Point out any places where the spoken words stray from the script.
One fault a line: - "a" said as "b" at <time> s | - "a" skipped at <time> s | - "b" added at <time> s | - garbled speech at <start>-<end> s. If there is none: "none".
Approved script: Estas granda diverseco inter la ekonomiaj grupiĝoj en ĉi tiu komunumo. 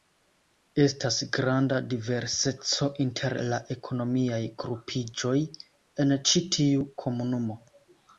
none